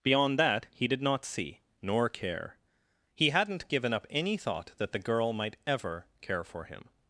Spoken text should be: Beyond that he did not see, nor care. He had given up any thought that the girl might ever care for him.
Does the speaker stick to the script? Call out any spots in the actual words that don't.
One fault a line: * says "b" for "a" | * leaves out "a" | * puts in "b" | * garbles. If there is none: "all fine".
* says "hadn't" for "had"